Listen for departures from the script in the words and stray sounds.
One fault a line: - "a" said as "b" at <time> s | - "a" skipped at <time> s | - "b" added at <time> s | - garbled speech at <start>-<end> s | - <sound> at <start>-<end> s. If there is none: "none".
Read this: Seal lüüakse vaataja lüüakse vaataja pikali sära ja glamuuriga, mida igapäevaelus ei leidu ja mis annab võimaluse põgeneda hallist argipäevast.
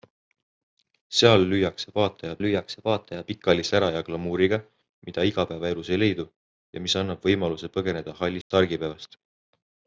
- dropout at 8.4-8.5 s